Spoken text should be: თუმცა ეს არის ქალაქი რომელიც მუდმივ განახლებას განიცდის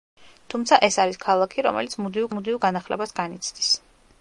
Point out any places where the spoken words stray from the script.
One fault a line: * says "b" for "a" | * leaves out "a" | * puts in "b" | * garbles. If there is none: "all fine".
* puts in "მუდმივ"